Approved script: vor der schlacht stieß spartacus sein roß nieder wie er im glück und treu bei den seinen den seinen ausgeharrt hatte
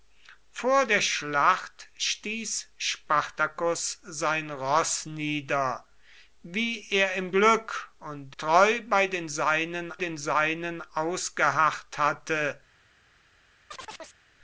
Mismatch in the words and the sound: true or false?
true